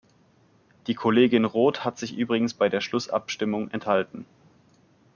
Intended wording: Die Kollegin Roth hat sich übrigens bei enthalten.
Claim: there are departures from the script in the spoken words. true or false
true